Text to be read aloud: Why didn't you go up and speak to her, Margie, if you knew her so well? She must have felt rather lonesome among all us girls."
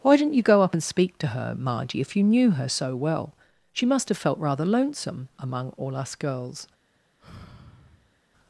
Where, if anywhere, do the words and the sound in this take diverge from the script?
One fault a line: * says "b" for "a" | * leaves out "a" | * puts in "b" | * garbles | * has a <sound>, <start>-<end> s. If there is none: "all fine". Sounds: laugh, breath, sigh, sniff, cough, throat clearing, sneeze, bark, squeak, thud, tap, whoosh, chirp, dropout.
* has a sigh, 7.2-8.2 s